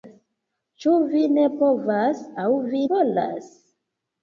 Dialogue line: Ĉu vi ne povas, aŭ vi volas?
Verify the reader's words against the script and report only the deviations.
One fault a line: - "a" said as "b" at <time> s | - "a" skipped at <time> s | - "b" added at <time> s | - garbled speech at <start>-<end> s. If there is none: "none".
none